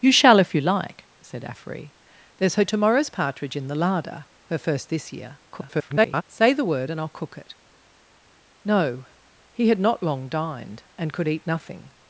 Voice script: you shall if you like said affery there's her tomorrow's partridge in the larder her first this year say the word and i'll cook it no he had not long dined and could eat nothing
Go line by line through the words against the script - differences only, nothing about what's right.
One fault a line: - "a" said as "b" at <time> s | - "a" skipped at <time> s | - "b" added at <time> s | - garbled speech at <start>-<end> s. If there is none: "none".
- garbled speech at 5.5-6.2 s